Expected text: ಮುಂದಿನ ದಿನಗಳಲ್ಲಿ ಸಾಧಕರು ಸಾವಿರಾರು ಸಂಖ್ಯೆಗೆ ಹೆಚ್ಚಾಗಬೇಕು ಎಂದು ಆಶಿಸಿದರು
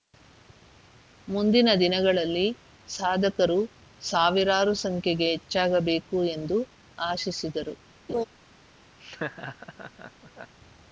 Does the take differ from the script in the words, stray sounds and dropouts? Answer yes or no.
yes